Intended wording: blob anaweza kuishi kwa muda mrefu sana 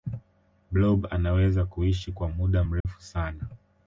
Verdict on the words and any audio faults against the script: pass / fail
fail